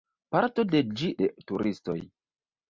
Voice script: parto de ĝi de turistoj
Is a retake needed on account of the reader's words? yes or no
no